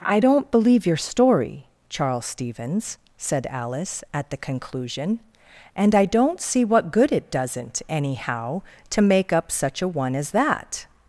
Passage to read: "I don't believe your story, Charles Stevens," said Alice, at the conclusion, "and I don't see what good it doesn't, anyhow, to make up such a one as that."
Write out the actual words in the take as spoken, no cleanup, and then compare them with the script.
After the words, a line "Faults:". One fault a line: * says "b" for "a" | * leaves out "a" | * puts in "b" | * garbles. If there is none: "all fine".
"I don't believe your story, Charles Stevens," said Alice, at the conclusion, "and I don't see what good it doesn't, anyhow, to make up such a one as that."
Faults:
all fine